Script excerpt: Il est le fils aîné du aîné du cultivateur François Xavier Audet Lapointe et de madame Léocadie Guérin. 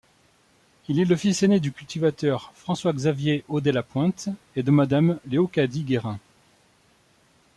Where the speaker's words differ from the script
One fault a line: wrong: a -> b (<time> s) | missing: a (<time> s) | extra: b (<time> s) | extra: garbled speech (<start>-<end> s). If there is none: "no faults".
missing: aîné du (1.7 s)